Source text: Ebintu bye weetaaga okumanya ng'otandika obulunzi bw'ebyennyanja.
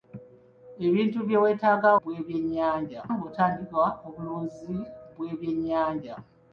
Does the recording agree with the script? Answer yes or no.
no